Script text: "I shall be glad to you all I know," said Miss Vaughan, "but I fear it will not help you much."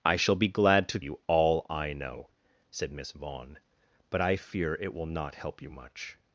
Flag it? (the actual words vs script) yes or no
no